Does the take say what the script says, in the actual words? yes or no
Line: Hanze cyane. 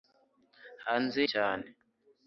yes